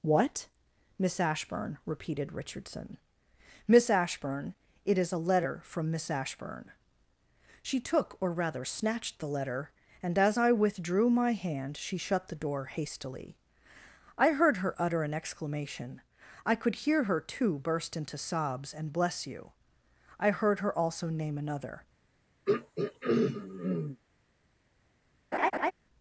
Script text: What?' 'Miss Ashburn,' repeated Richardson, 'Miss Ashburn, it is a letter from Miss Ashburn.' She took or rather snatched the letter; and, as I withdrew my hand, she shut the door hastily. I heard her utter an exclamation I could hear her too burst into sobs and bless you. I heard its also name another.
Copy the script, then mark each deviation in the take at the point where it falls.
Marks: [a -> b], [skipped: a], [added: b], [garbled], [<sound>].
What?' 'Miss Ashburn,' repeated Richardson, 'Miss Ashburn, it is a letter from Miss Ashburn.' She took or rather snatched the letter; and, as I withdrew my hand, she shut the door hastily. I heard her utter an exclamation I could hear her too burst into sobs and bless you. I heard [its -> her] also name another. [throat clearing] [laugh]